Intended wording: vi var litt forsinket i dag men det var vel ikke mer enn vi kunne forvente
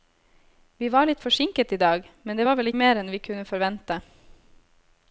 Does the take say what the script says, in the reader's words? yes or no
no